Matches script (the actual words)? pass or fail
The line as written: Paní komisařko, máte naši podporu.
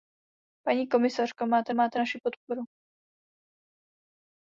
fail